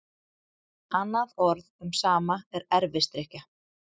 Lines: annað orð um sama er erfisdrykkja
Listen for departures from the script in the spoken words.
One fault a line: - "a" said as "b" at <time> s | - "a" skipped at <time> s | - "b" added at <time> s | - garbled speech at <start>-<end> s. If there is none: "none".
none